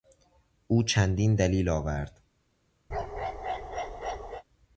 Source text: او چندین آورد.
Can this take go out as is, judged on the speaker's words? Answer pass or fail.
fail